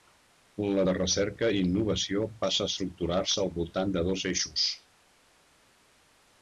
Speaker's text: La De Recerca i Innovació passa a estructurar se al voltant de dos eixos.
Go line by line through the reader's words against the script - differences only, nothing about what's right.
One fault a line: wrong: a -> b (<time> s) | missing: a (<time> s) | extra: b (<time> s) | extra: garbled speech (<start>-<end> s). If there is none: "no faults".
no faults